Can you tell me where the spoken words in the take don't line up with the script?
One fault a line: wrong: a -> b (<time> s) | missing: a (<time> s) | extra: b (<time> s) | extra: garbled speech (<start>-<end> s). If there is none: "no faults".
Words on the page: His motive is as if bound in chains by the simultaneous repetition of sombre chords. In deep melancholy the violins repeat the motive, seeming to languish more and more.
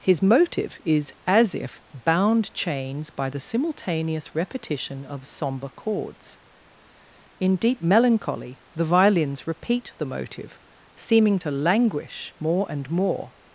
missing: in (2.5 s)